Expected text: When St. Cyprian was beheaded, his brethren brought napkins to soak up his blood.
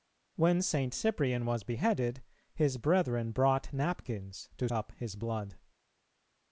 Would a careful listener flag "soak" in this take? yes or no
yes